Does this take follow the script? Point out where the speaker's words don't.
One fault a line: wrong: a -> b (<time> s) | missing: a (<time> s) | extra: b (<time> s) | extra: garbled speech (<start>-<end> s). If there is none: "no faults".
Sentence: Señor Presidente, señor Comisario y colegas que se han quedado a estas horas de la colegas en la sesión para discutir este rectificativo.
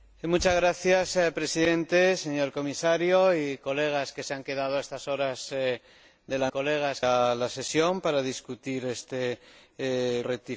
no faults